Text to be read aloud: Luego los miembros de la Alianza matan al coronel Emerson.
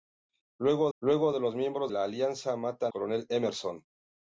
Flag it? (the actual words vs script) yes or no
yes